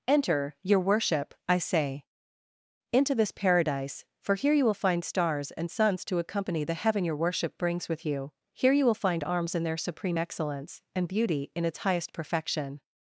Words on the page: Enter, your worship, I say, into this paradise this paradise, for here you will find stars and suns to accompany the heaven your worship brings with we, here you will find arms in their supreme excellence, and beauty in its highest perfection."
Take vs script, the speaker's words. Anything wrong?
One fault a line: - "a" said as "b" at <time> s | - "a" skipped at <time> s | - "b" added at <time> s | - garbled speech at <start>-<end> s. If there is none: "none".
- "this paradise" skipped at 4.0 s
- "we" said as "you" at 8.1 s